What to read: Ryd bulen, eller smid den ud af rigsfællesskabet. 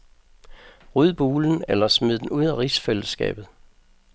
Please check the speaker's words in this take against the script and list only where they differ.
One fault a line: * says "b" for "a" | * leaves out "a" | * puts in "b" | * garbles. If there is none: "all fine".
all fine